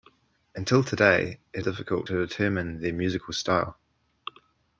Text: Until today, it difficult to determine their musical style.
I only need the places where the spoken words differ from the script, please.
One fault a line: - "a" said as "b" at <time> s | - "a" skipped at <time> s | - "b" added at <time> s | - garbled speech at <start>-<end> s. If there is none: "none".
none